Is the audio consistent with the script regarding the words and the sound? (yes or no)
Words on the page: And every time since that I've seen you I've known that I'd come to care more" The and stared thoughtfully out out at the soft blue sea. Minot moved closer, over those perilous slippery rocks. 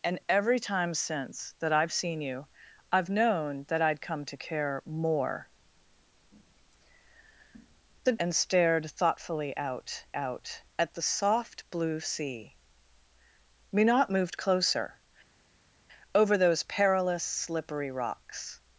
yes